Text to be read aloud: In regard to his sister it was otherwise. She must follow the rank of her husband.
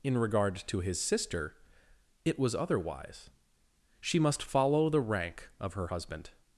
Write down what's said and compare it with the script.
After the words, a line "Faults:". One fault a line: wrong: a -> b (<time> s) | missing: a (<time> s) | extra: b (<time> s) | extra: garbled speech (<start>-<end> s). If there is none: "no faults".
In regard to his sister it was otherwise. She must follow the rank of her husband.
Faults:
no faults